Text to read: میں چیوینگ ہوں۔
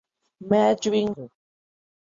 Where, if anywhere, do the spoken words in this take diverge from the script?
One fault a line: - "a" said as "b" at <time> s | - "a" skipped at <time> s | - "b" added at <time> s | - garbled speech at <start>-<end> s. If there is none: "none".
none